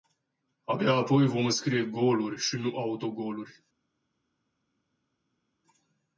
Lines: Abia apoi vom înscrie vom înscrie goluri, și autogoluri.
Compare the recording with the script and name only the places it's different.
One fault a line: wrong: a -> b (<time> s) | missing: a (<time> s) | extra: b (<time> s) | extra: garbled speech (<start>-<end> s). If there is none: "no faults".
missing: vom înscrie (1.9 s)
extra: nu (2.5 s)